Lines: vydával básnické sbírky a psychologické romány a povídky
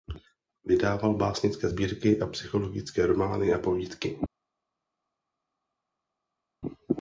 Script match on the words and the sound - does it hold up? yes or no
yes